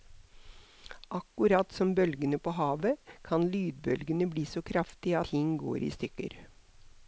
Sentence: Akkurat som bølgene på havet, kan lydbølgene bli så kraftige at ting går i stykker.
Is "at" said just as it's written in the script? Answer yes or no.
no